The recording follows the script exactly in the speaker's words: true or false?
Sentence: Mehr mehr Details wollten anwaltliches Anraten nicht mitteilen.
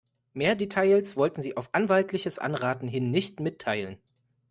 false